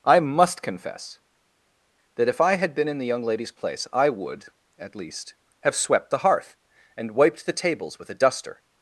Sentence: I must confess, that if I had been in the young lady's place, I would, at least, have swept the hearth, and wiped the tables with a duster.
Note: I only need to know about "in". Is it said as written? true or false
true